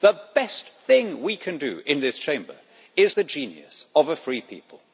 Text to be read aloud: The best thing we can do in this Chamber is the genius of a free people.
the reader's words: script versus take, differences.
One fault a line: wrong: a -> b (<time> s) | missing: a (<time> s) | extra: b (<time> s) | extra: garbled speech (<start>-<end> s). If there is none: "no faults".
no faults